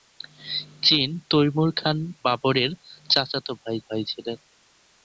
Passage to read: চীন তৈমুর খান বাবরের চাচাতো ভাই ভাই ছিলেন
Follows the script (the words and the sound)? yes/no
yes